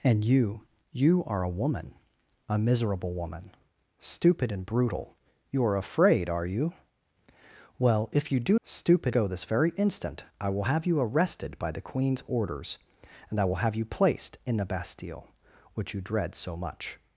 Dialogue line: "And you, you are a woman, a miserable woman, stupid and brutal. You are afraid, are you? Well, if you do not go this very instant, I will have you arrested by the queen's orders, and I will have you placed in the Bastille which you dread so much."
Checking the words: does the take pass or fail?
fail